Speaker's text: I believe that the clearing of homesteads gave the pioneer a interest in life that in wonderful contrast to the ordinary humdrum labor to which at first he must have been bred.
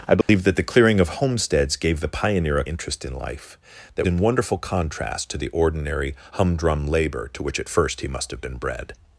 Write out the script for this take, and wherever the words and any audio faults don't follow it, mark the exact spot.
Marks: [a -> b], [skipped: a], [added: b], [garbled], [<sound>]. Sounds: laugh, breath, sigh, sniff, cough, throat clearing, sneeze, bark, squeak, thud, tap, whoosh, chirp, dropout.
I believe [dropout] that the clearing of homesteads gave the pioneer a interest in life that in wonderful contrast to the ordinary humdrum labor to which at first he must have been bred.